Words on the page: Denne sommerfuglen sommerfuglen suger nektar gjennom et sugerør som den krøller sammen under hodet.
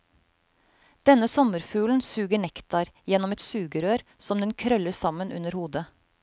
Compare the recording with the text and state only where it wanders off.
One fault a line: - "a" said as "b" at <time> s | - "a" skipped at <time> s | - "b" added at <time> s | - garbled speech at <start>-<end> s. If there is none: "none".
- "sommerfuglen" skipped at 2.0 s